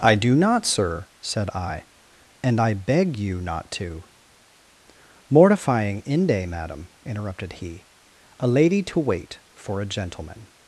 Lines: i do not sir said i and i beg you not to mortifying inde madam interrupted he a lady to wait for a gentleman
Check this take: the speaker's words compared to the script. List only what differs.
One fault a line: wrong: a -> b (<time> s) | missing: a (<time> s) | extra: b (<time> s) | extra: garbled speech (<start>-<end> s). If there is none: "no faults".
no faults